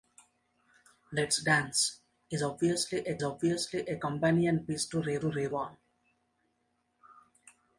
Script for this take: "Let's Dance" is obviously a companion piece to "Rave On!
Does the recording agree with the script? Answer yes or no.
no